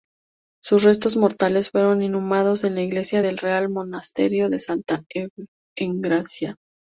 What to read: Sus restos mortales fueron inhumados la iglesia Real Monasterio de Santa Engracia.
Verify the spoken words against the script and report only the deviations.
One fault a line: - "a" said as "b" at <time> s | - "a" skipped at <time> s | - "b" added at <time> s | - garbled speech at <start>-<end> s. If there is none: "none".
- "en" added at 2.6 s
- "del" added at 3.2 s